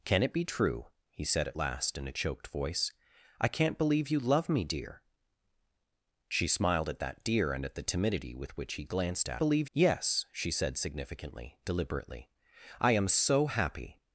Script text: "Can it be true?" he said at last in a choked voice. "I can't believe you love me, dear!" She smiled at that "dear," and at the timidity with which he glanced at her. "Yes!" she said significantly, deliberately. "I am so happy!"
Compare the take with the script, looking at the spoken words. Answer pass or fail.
fail